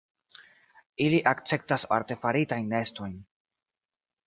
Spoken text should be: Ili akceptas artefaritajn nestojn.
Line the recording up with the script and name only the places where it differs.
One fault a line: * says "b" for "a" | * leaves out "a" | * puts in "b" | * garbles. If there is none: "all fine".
all fine